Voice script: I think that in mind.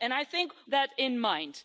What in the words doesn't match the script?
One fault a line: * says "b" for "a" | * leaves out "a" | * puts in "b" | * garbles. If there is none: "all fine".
all fine